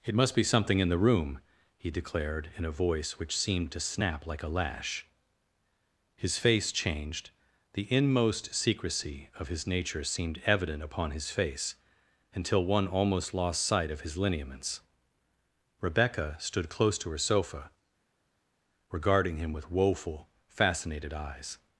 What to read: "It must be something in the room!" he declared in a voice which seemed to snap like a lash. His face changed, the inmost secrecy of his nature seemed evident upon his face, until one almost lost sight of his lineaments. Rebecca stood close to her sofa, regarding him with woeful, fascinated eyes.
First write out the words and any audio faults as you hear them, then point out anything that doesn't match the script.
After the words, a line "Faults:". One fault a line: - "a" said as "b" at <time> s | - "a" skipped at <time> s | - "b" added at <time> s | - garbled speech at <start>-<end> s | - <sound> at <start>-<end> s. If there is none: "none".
"It must be something in the room!" he declared in a voice which seemed to snap like a lash. His face changed, the inmost secrecy of his nature seemed evident upon his face, until one almost lost sight of his lineaments. Rebecca stood close to her sofa, regarding him with woeful, fascinated eyes.
Faults:
none